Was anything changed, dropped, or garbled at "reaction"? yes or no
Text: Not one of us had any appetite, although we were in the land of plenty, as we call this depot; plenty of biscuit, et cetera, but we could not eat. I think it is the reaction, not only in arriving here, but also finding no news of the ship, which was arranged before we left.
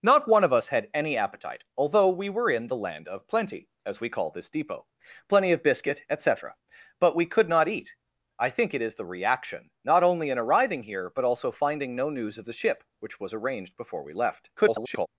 no